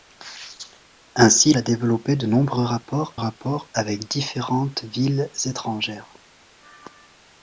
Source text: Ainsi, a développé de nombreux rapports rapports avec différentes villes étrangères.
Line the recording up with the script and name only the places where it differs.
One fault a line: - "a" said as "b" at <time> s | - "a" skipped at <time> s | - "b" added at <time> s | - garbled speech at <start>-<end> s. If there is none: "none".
none